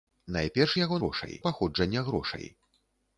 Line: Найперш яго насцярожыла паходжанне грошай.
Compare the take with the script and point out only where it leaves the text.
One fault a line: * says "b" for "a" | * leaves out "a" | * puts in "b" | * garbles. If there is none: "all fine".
* says "грошай" for "насцярожыла"